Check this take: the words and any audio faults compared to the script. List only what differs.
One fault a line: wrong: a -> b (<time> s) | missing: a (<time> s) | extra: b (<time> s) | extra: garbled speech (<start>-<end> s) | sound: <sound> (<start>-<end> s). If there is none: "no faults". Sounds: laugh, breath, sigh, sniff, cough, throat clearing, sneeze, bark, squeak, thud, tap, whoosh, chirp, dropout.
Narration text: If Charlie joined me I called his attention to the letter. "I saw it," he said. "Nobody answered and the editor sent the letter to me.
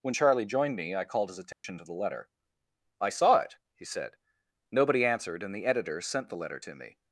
wrong: If -> When (0.0 s)
sound: dropout (1.5-1.6 s)